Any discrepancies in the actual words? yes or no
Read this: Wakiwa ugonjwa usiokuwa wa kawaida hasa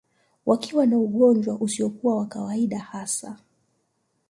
yes